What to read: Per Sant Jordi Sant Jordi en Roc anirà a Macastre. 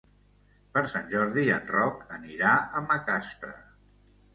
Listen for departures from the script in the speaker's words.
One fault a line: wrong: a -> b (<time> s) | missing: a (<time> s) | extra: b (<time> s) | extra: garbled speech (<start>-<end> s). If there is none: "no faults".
missing: Sant Jordi (1.5 s)